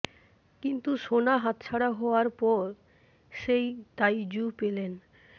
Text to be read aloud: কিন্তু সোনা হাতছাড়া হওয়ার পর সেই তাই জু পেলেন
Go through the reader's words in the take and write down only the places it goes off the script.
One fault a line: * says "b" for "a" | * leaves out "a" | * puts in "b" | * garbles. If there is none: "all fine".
all fine